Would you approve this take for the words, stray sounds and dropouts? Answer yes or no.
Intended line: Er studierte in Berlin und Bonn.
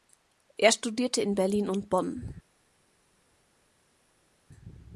yes